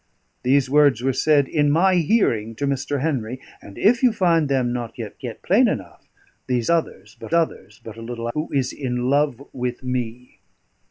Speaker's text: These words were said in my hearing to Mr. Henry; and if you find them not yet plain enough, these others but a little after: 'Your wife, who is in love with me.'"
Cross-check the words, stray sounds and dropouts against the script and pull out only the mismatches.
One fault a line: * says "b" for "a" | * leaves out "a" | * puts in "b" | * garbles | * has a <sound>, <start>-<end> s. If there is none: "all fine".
* puts in "yet"
* puts in "others but"
* leaves out "after Your wife"